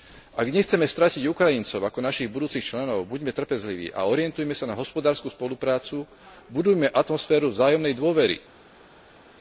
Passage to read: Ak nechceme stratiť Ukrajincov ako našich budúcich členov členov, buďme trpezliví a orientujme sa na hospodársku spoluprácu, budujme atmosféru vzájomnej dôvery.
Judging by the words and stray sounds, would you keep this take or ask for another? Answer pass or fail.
fail